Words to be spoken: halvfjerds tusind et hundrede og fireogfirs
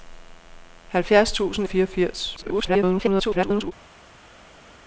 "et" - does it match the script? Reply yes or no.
no